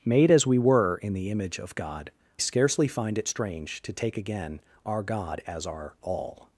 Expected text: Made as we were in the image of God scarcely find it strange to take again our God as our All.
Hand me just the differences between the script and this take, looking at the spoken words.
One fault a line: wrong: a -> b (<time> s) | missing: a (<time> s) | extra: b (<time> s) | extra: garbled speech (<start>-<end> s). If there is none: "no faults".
no faults